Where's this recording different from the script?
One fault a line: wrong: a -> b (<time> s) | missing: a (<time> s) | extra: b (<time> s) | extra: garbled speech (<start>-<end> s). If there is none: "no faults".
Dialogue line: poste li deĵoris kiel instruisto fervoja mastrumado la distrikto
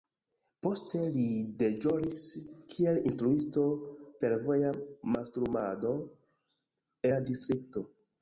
no faults